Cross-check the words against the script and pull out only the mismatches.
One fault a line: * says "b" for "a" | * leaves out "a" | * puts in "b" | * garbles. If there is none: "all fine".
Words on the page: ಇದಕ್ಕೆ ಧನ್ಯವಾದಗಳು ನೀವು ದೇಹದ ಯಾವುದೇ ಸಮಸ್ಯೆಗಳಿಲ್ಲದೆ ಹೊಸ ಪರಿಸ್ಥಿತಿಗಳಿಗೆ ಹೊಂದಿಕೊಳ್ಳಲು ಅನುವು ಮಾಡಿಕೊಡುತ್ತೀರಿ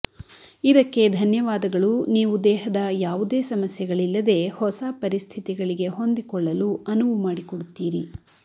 all fine